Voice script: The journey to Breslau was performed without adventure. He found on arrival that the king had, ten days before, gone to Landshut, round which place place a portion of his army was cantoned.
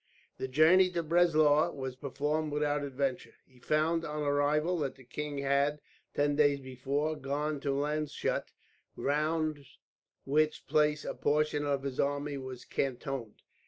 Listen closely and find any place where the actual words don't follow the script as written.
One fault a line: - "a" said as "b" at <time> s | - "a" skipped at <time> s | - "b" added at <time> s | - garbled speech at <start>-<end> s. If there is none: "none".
- "place" skipped at 11.0 s